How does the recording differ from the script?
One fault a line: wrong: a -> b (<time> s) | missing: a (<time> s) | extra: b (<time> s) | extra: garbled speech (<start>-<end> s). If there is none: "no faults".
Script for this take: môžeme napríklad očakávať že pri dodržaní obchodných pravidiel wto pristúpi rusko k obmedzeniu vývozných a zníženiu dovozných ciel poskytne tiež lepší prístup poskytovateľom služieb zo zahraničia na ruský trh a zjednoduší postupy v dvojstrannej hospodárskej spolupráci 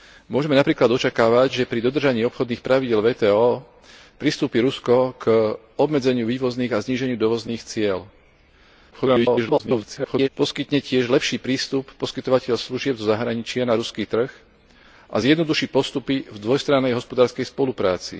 extra: garbled speech (8.9-10.3 s)